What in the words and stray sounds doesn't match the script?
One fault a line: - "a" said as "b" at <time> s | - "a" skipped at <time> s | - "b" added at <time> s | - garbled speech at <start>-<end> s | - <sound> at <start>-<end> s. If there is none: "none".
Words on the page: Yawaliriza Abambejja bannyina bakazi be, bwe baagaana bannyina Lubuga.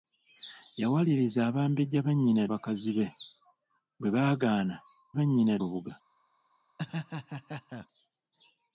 - laugh at 6.8-7.9 s